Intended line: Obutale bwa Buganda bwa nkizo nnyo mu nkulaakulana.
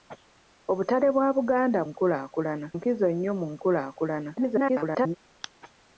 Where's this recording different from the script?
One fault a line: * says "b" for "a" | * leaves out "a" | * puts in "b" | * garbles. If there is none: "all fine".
* says "nkulaakulana" for "bwa"
* garbles